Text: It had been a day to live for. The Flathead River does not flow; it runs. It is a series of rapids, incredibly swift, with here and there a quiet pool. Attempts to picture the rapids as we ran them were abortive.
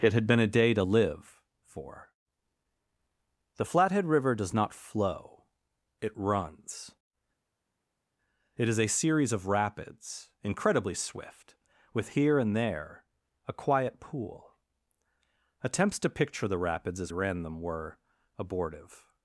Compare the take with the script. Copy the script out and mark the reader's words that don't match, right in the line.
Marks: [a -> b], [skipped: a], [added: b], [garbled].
It had been a day to live for. The Flathead River does not flow; it runs. It is a series of rapids, incredibly swift, with here and there a quiet pool. Attempts to picture the rapids as [skipped: we] ran them were abortive.